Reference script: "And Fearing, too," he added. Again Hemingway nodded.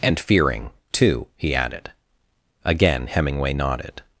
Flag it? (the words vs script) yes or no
no